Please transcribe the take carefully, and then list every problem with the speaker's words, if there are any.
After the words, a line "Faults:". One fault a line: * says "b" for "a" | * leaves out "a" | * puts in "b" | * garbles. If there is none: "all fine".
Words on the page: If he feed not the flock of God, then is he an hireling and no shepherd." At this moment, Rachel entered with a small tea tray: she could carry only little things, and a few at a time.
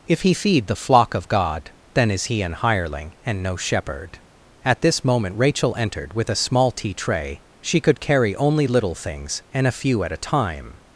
If he feed the flock of God, then is he an hireling and no shepherd." At this moment, Rachel entered with a small tea tray: she could carry only little things, and a few at a time.
Faults:
* leaves out "not"